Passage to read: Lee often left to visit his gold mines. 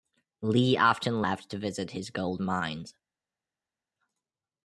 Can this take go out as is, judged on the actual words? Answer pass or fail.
pass